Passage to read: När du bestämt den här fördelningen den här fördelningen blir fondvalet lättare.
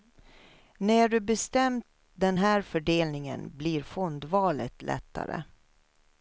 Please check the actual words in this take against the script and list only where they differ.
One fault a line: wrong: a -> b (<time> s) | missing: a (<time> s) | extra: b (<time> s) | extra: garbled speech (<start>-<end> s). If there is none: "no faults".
missing: den här fördelningen (3.6 s)